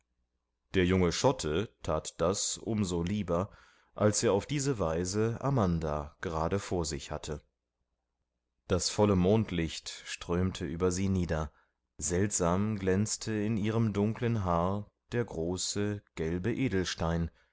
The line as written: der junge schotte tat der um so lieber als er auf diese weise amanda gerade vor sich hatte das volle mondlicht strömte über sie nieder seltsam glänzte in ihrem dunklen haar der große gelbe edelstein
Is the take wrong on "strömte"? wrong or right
right